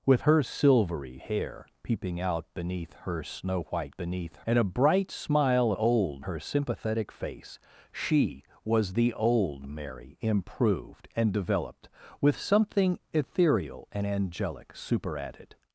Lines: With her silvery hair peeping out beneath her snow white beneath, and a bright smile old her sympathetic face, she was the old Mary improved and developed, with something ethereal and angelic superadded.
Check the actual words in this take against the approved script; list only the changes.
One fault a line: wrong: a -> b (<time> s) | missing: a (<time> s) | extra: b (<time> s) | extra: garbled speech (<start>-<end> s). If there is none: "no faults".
no faults